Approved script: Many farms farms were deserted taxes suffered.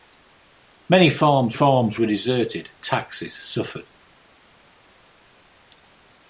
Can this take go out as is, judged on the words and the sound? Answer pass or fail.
pass